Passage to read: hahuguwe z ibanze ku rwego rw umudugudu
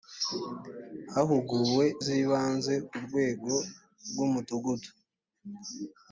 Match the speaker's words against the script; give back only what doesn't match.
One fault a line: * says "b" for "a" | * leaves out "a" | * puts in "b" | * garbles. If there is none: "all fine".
all fine